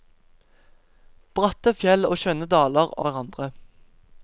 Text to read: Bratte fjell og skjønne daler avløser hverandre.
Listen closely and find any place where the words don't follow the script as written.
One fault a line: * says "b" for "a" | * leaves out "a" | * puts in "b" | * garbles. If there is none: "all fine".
* leaves out "avløser"